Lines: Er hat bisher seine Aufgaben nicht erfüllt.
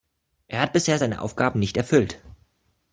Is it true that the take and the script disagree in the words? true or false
false